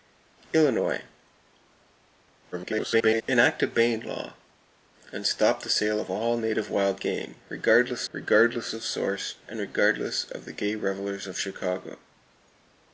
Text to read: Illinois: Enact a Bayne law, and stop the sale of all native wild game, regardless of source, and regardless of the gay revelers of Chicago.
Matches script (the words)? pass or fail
fail